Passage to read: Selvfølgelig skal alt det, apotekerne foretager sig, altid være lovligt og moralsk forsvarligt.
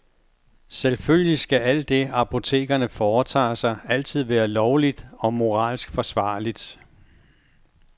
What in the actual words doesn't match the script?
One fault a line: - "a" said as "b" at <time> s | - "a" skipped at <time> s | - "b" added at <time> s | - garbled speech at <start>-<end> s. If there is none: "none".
none